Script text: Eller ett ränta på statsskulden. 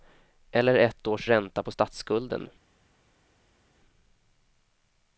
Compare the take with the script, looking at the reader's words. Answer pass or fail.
fail